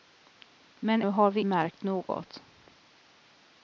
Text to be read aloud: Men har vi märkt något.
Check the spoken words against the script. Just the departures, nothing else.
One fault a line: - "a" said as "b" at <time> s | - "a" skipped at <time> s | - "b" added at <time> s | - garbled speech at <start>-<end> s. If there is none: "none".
none